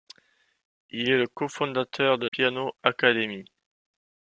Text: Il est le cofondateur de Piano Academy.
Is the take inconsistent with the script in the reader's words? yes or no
no